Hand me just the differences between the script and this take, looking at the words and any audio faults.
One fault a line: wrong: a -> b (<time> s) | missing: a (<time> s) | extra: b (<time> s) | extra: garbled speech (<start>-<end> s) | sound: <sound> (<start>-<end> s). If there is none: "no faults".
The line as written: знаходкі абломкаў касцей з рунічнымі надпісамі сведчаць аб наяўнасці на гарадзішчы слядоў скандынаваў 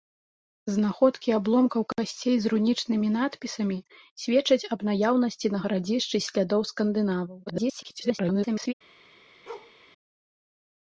extra: garbled speech (7.5-8.7 s)
sound: bark (9.5-9.8 s)